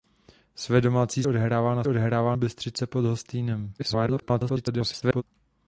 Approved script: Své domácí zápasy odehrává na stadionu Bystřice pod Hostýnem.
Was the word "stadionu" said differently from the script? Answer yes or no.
yes